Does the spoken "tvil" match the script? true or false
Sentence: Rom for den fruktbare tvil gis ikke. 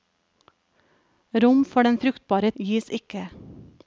false